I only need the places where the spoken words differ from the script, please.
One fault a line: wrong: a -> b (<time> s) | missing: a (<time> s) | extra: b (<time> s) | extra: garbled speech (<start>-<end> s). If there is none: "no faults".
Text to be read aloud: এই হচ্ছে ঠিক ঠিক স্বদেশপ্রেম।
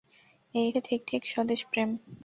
missing: হচ্ছে (0.7 s)